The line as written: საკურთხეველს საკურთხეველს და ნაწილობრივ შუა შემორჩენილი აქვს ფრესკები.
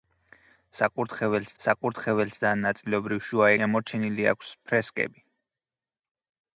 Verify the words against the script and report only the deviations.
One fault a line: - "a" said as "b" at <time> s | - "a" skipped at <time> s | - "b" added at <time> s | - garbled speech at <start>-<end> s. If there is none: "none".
none